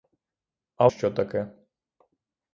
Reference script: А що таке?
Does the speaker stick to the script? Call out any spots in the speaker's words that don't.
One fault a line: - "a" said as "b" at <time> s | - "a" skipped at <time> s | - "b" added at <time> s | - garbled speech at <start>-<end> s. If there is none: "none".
none